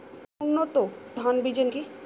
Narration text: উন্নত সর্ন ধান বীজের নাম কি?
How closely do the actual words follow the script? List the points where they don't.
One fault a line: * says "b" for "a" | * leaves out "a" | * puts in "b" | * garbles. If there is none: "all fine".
* leaves out "সর্ন"
* leaves out "নাম"